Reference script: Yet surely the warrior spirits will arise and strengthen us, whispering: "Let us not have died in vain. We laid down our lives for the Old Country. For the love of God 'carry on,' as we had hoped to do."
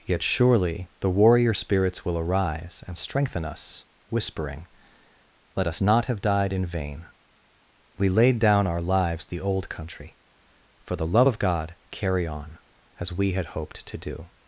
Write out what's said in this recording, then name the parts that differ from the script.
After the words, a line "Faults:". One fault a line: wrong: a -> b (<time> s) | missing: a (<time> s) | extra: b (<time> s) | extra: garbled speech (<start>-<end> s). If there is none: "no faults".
Yet surely the warrior spirits will arise and strengthen us, whispering: "Let us not have died in vain. We laid down our lives the Old Country. For the love of God 'carry on,' as we had hoped to do."
Faults:
missing: for (9.2 s)